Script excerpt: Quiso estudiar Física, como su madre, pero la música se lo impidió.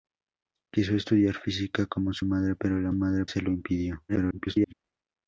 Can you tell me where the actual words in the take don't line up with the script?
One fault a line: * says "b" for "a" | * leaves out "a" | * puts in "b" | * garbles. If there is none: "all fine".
* says "madre" for "música"
* garbles